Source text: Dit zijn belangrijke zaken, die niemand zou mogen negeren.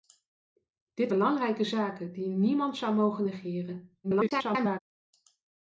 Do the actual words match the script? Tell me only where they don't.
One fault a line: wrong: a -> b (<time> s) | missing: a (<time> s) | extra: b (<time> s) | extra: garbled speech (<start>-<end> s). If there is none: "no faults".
missing: zijn (1.1 s)
extra: garbled speech (4.0-4.8 s)